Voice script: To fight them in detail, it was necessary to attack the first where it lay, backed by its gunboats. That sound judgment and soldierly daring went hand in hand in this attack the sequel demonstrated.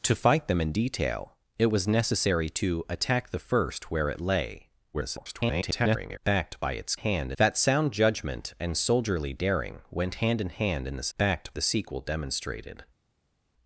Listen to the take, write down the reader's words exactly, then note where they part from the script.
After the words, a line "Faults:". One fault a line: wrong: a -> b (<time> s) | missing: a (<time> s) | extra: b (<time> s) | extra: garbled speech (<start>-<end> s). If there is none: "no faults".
To fight them in detail, it was necessary to attack the first where it lay, [garbled] backed by its hand. That sound judgment and soldierly daring went hand in hand in this backed the sequel demonstrated.
Faults:
extra: garbled speech (4.9-6.2 s)
wrong: gunboats -> hand (6.9 s)
wrong: attack -> backed (11.2 s)